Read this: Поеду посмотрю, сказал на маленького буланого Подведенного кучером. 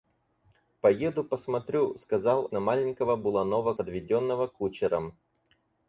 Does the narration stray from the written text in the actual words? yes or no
no